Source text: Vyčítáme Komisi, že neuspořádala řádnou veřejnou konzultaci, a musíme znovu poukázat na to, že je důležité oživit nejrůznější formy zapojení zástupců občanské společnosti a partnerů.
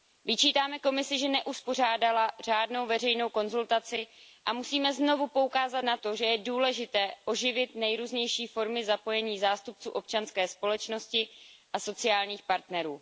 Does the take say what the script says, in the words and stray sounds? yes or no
no